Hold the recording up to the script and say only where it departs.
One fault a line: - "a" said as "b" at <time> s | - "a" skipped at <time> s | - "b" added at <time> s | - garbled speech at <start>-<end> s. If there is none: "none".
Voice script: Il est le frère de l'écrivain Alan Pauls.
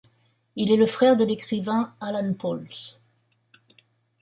none